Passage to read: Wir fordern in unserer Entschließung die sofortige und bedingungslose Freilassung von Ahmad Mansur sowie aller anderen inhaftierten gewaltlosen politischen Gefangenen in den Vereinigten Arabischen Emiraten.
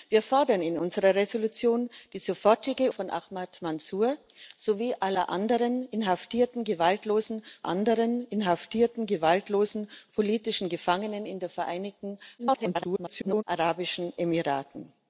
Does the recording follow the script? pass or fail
fail